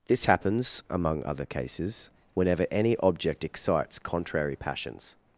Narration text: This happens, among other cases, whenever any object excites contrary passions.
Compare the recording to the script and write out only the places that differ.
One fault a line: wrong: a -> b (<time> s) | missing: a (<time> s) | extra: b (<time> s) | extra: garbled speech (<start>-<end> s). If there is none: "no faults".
no faults